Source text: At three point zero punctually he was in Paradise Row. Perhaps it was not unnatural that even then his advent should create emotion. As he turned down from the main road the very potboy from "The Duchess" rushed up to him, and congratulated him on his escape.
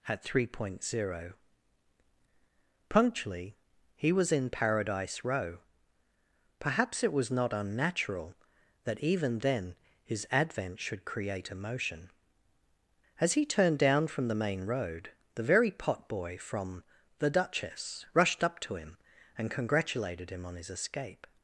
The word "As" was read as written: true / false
true